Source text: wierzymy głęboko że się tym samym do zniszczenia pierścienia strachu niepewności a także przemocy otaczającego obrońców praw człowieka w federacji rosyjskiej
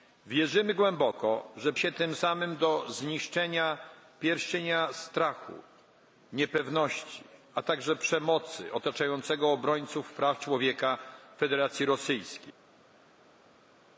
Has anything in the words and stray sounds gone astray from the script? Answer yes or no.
no